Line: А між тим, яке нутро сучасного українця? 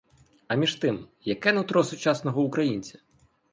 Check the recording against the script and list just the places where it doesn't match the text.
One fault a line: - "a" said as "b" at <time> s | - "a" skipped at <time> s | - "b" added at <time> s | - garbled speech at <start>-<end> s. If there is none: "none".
none